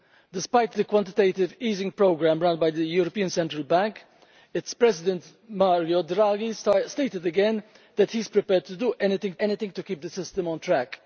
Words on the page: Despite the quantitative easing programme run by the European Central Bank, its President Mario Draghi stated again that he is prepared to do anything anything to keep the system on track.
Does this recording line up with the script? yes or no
yes